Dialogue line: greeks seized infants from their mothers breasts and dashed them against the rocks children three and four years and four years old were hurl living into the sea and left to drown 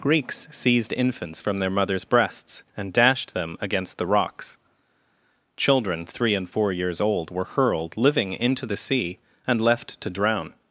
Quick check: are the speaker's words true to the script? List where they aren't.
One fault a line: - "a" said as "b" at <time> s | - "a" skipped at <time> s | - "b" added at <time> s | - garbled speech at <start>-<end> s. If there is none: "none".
- "and four years" skipped at 7.0 s
- "hurl" said as "hurled" at 7.5 s